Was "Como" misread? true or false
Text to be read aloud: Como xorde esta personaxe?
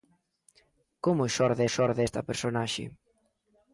false